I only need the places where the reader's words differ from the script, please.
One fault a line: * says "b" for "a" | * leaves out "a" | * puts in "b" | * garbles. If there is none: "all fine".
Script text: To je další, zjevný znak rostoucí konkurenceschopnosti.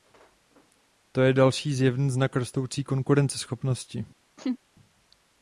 all fine